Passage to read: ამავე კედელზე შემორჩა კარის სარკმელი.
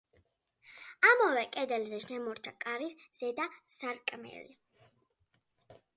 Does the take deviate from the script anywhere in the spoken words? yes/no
yes